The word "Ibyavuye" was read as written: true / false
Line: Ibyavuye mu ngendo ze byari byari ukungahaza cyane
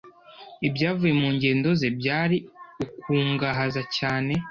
true